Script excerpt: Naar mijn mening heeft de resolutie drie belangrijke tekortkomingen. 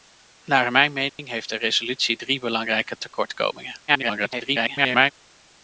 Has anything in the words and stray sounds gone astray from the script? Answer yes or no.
yes